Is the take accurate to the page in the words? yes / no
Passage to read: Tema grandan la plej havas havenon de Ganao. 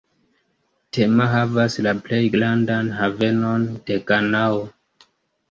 no